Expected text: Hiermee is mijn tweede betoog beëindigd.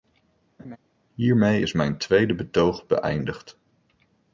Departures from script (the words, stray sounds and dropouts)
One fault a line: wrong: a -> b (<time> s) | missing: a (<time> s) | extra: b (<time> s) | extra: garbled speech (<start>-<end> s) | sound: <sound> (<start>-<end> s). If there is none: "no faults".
sound: laugh (0.6-0.8 s)